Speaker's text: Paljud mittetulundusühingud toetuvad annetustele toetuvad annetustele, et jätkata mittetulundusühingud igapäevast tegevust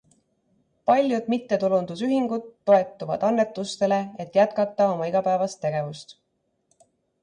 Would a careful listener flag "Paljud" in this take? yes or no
no